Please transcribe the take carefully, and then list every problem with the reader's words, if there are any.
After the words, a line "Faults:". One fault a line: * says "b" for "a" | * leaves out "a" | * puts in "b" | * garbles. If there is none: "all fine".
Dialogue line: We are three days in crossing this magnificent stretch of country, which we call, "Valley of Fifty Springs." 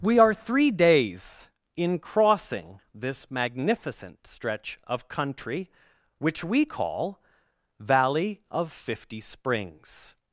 We are three days in crossing this magnificent stretch of country, which we call, "Valley of Fifty Springs."
Faults:
all fine